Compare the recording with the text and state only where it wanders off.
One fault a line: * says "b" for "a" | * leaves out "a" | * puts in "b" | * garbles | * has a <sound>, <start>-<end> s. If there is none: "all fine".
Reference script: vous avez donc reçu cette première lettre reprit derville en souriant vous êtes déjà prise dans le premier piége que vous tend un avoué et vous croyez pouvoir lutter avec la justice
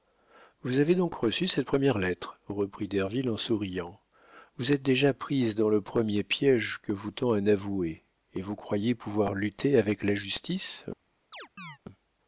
* has a chirp, 11.3-11.8 s